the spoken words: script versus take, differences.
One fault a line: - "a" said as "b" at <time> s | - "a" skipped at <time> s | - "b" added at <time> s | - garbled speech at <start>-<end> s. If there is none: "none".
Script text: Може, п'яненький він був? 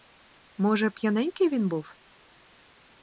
none